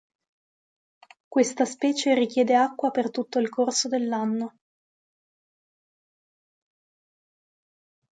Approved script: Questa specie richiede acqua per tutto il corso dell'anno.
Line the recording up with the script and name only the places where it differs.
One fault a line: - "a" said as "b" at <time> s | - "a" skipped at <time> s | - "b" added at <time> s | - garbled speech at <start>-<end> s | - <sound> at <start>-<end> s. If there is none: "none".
none